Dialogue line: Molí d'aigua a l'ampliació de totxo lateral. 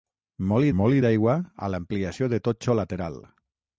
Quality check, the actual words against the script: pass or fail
fail